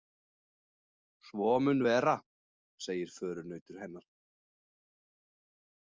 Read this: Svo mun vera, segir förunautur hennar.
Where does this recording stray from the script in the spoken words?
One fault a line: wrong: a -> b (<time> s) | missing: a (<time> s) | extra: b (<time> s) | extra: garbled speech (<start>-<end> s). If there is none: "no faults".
no faults